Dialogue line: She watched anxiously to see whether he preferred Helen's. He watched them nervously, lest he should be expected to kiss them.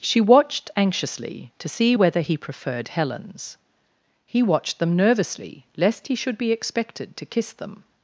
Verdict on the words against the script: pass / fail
pass